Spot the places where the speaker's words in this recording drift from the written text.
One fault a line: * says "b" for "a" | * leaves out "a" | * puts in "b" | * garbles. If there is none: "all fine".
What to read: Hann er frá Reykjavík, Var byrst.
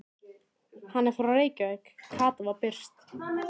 * puts in "Kata"